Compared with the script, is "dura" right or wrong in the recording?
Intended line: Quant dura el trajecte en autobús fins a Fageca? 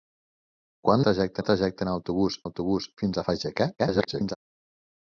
wrong